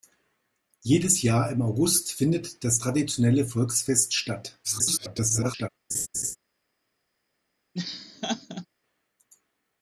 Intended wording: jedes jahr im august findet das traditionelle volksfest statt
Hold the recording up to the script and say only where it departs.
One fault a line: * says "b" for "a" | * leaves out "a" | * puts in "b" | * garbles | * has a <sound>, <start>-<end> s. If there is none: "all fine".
* garbles
* has a laugh, 5.9-6.4 s
* has a laugh, 7.7-8.7 s